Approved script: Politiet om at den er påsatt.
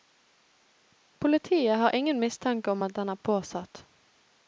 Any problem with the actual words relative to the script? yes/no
yes